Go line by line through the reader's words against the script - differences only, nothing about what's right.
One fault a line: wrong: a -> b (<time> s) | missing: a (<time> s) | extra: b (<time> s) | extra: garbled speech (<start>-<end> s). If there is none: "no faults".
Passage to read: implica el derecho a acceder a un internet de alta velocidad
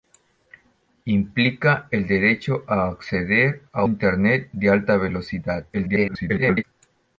missing: un (3.9 s)
extra: garbled speech (5.7-6.6 s)